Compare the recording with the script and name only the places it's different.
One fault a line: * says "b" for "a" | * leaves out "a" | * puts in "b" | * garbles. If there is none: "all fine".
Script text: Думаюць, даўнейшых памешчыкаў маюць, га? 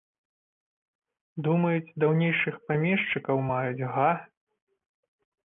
all fine